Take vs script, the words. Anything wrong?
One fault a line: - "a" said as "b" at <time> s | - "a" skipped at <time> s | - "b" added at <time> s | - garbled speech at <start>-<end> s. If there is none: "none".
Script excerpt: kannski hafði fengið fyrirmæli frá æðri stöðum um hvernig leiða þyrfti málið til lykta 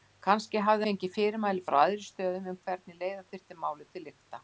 none